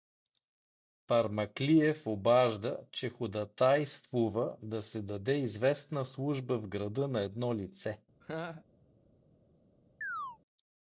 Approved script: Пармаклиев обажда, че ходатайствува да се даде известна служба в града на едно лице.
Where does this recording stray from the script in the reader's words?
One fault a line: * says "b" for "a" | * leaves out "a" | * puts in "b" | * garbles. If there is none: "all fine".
all fine